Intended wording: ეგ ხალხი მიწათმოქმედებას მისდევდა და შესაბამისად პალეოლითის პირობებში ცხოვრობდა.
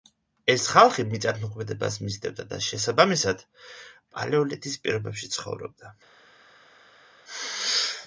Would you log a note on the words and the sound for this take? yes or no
yes